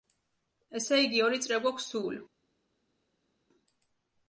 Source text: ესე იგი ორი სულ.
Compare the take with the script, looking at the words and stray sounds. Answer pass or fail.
fail